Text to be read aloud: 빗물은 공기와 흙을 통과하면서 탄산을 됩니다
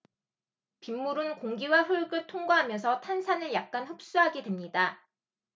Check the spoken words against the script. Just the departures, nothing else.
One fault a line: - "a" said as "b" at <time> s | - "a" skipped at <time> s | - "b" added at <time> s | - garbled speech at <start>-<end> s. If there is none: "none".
- "약간 흡수하게" added at 3.5 s